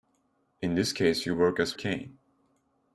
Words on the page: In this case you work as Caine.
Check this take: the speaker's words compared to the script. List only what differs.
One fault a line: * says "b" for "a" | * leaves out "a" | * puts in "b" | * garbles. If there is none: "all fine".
all fine